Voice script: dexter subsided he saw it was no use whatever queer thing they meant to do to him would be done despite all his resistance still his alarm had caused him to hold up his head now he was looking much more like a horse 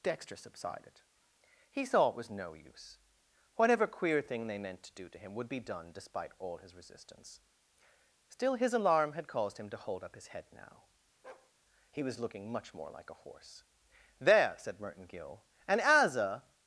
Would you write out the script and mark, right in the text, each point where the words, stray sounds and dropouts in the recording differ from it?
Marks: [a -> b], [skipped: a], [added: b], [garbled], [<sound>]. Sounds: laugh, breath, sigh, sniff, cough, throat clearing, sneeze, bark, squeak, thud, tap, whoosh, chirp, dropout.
dexter subsided he saw it was no use whatever queer thing they meant to do to him would be done despite all his resistance still his alarm had caused him to hold up his head now [bark] he was looking much more like a horse [added: there said merton gill and as a]